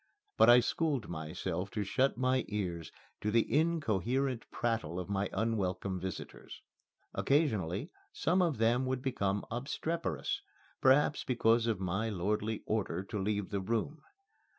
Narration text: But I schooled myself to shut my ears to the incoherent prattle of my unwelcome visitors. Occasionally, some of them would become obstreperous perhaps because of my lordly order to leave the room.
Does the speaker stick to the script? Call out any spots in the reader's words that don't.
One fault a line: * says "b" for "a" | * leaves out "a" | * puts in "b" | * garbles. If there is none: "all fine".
all fine